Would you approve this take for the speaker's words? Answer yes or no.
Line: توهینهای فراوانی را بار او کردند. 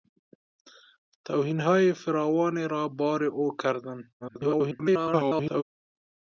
no